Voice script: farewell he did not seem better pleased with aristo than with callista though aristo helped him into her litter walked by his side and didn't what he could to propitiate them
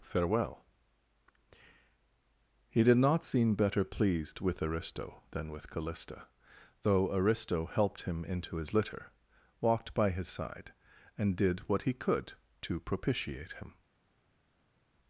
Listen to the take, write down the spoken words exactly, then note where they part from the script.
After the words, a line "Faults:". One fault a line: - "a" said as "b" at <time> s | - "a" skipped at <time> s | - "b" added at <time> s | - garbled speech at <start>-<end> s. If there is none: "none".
farewell he did not seem better pleased with aristo than with callista though aristo helped him into his litter walked by his side and did what he could to propitiate him
Faults:
- "her" said as "his" at 8.6 s
- "didn't" said as "did" at 11.3 s
- "them" said as "him" at 13.5 s